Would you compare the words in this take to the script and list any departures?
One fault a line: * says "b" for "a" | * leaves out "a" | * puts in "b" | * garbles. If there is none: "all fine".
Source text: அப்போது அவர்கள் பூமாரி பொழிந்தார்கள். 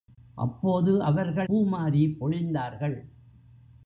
all fine